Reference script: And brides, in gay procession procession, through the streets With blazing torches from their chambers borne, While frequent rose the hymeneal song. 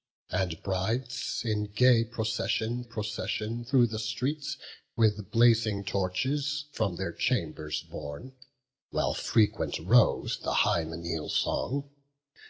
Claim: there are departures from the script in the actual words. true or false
false